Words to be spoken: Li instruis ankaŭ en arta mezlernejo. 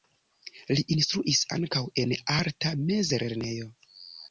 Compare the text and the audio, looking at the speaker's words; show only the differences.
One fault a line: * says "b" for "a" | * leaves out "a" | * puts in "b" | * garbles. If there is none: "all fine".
all fine